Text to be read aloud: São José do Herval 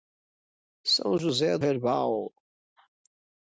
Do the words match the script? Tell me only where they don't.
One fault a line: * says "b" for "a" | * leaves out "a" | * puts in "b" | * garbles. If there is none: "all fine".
* leaves out "do"